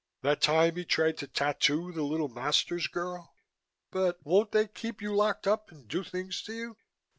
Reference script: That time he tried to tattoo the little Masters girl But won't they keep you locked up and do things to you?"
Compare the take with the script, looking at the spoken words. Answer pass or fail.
pass